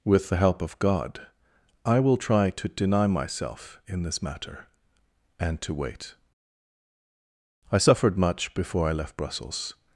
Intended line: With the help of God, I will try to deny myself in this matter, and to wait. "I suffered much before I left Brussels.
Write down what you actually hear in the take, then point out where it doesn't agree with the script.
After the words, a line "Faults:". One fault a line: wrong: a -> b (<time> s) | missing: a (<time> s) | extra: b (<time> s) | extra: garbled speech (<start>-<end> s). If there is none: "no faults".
With the help of God, I will try to deny myself in this matter, and to wait. "I suffered much before I left Brussels.
Faults:
no faults